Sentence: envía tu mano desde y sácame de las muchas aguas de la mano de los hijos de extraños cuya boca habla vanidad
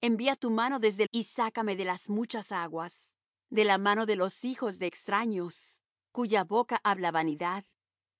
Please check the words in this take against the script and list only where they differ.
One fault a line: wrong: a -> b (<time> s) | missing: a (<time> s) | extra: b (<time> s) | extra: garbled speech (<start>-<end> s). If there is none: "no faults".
no faults